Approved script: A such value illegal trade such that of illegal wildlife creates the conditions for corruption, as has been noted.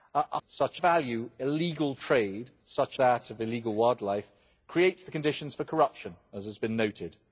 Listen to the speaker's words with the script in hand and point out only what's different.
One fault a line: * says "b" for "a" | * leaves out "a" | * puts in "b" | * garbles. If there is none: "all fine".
all fine